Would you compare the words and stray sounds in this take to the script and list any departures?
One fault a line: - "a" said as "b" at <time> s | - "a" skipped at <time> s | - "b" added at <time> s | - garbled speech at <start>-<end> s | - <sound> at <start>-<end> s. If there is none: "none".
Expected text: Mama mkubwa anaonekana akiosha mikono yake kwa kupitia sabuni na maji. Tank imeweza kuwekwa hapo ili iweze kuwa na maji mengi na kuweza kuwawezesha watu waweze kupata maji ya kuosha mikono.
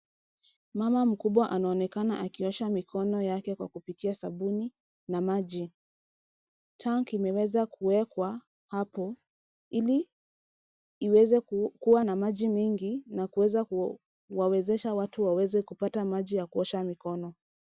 none